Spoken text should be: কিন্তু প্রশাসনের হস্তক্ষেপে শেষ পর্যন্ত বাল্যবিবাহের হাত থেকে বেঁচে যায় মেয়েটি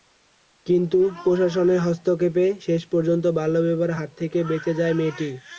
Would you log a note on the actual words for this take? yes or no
no